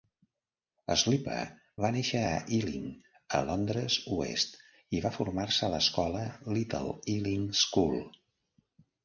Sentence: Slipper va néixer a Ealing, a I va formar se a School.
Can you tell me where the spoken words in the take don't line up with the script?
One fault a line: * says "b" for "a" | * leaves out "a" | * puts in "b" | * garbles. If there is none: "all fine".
* puts in "Londres oest"
* puts in "l'escola Little Ealing"